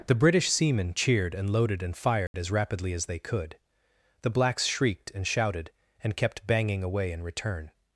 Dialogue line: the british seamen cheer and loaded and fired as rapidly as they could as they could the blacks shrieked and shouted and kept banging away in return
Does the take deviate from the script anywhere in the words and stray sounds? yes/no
yes